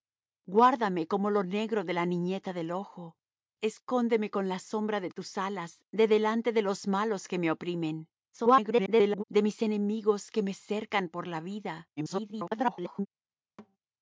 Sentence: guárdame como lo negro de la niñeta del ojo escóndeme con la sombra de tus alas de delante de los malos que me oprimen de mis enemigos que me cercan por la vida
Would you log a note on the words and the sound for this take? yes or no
yes